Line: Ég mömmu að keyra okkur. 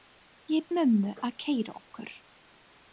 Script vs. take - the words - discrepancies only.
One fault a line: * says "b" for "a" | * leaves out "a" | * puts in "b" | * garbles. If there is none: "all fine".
all fine